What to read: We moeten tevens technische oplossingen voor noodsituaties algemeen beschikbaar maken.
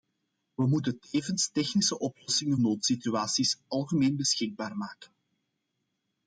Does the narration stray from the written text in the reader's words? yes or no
yes